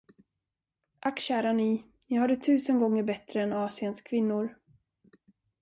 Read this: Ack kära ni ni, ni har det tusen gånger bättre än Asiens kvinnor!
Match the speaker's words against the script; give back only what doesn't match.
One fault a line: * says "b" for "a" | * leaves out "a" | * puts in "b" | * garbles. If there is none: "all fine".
* leaves out "ni"